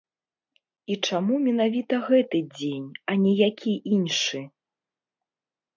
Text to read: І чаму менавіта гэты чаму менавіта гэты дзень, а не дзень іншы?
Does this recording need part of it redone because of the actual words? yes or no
yes